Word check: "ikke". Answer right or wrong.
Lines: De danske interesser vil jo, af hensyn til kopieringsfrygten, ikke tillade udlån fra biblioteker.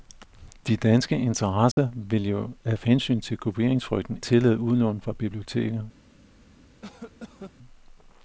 wrong